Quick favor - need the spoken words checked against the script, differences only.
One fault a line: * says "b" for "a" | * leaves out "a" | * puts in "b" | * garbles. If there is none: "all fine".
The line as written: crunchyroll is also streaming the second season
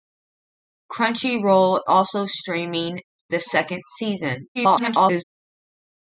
* leaves out "is"
* garbles